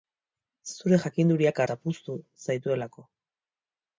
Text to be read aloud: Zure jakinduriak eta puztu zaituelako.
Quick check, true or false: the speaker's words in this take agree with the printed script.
true